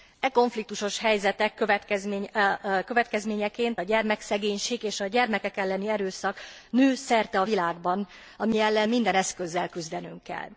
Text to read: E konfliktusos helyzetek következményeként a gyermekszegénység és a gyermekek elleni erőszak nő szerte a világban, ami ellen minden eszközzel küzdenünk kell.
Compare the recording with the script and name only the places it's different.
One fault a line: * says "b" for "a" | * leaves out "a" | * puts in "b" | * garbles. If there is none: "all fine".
all fine